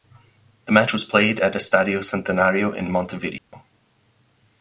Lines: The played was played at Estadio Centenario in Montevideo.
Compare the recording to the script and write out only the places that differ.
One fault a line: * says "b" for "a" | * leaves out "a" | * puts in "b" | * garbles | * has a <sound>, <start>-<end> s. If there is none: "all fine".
* says "match" for "played"
* has a dropout, 3.4-3.5 s